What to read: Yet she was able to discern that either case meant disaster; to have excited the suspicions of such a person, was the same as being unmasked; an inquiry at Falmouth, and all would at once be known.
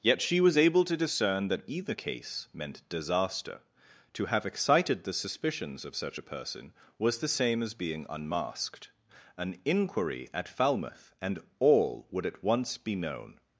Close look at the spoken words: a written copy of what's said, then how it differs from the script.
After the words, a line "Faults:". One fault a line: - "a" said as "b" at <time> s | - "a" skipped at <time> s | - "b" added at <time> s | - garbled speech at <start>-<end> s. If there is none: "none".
Yet she was able to discern that either case meant disaster; to have excited the suspicions of such a person, was the same as being unmasked; an inquiry at Falmouth, and all would at once be known.
Faults:
none